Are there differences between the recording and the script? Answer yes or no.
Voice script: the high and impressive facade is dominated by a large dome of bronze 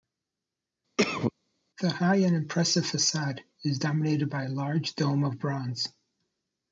no